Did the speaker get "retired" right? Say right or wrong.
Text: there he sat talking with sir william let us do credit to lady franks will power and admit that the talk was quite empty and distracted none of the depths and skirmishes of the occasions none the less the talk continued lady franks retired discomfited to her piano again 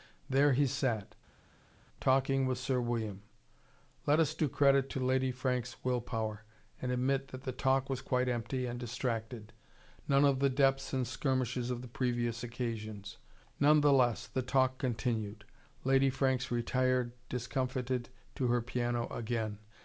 right